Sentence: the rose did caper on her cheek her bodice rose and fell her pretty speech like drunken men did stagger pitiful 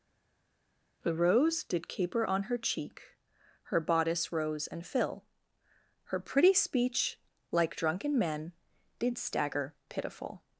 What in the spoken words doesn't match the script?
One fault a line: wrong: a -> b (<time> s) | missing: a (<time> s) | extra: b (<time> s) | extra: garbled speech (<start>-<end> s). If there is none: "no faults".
wrong: fell -> fill (4.8 s)